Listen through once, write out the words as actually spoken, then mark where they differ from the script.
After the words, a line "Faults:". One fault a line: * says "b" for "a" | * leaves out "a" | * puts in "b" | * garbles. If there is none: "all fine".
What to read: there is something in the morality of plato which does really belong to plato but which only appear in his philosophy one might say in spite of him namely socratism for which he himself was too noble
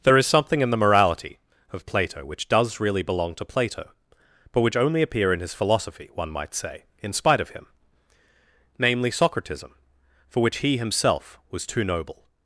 there is something in the morality of plato which does really belong to plato but which only appear in his philosophy one might say in spite of him namely socratism for which he himself was too noble
Faults:
all fine